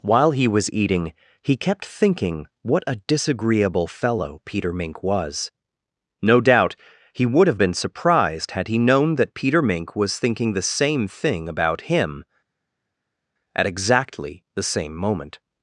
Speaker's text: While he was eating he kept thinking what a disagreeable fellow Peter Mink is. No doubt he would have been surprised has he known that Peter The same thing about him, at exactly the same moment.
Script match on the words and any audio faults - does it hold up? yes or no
no